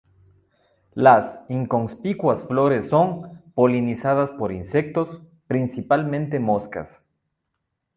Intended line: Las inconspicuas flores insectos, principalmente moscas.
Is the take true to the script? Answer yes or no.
no